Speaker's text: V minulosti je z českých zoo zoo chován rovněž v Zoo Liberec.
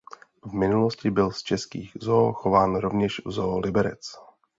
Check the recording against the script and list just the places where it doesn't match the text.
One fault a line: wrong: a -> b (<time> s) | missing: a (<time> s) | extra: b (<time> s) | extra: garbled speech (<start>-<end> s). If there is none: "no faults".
wrong: je -> byl (1.1 s)
missing: zoo (2.3 s)